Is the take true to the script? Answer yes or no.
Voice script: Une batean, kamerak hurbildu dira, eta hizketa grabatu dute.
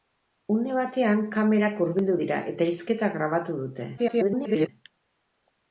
no